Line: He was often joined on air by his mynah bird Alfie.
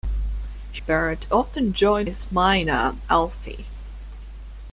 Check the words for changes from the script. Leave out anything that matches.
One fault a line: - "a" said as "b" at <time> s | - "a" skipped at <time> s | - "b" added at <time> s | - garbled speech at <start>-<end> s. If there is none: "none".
- "was" said as "bird" at 0.8 s
- "on air by" skipped at 2.1 s
- "bird" skipped at 2.9 s